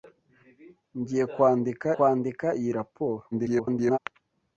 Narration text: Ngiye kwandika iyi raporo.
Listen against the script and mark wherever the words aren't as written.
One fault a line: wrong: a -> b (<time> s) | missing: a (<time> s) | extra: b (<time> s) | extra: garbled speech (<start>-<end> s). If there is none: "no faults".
extra: kwandika (1.9 s)
extra: garbled speech (3.3-4.0 s)